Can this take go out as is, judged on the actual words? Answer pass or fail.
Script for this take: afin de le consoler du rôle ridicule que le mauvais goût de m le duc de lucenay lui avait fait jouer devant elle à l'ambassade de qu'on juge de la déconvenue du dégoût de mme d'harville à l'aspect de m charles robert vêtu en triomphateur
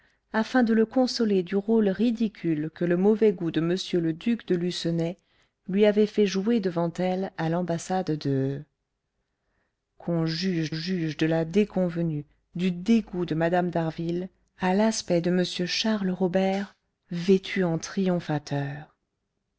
fail